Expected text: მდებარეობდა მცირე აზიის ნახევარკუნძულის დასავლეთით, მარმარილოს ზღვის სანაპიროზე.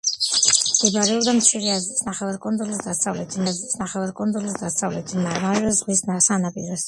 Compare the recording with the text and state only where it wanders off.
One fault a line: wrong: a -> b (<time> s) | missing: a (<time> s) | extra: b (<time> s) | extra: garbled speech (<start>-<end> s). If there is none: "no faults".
extra: აზიის ნახევარკუნძულის დასავლეთით (3.5 s)